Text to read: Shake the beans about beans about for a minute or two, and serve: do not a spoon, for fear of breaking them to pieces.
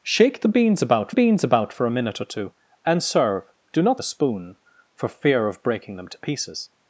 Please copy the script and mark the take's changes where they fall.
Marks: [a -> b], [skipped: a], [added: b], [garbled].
Shake the beans about beans about for a minute or two, and serve: do not a spoon, for fear of breaking them to pieces.